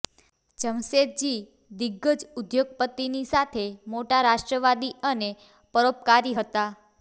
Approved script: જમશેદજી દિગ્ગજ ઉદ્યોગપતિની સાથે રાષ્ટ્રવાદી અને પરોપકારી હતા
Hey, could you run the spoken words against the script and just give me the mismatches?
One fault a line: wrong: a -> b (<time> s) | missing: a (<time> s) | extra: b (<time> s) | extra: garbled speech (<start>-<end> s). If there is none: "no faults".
extra: મોટા (3.9 s)